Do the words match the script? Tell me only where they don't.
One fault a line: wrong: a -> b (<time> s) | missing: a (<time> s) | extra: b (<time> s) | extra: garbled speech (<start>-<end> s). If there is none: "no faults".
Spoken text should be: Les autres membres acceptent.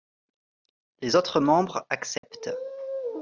no faults